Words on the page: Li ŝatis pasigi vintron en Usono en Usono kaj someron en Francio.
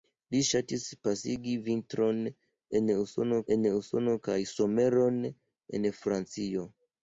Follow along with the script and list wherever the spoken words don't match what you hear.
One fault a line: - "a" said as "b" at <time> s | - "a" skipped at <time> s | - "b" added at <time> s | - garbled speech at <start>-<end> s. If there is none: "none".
none